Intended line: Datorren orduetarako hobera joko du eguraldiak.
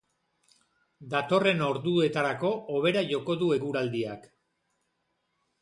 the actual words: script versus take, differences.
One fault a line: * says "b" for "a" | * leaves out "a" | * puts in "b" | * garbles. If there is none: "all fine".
all fine